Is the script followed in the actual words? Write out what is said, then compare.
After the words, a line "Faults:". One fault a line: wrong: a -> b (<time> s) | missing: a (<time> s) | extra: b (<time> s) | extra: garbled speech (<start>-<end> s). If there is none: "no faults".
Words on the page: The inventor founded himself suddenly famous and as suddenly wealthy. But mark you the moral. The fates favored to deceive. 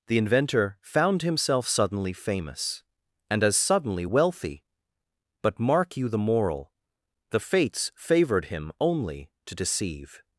The inventor found himself suddenly famous and as suddenly wealthy. But mark you the moral. The fates favored him only to deceive.
Faults:
wrong: founded -> found (0.8 s)
extra: him only (8.5 s)